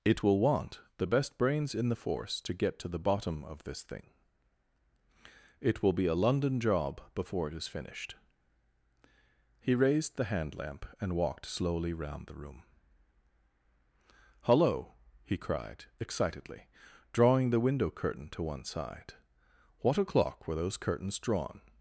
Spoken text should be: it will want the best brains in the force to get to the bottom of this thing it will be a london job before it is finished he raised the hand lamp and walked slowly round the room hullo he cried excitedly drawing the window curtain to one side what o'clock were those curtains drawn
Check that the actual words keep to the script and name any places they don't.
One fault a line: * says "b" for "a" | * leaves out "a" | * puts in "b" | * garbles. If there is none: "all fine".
all fine